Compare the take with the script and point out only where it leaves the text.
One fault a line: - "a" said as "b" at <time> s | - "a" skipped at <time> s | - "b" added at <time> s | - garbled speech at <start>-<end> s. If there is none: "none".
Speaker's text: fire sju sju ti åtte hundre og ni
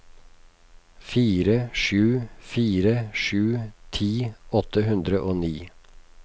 - "fire" added at 2.5 s